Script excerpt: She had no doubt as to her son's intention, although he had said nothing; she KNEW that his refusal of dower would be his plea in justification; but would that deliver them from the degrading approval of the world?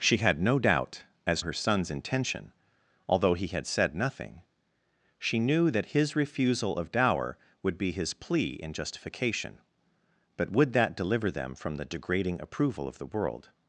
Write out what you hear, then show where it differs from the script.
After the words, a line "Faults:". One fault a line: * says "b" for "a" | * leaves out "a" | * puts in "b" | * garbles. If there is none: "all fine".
She had no doubt as her son's intention, although he had said nothing; she KNEW that his refusal of dower would be his plea in justification; but would that deliver them from the degrading approval of the world?
Faults:
* leaves out "to"